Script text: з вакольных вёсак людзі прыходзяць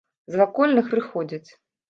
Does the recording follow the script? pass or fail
fail